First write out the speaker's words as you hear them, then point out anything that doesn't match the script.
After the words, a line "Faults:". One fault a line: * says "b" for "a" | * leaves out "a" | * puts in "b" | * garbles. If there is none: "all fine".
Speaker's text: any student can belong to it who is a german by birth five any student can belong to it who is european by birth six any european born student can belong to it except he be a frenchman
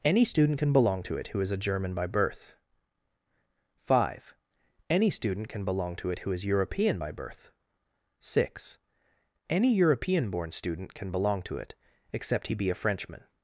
any student can belong to it who is a german by birth five any student can belong to it who is european by birth six any european born student can belong to it except he be a frenchman
Faults:
all fine